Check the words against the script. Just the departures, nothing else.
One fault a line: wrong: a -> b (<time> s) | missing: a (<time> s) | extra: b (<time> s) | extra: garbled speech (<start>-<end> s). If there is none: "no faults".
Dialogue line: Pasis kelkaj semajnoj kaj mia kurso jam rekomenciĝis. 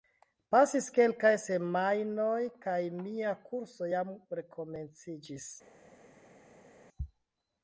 no faults